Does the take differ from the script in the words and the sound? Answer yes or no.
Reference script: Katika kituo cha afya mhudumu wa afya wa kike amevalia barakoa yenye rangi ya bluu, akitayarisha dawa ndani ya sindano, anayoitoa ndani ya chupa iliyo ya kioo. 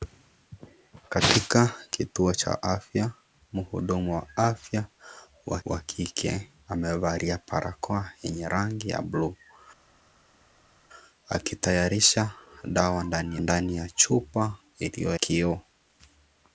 yes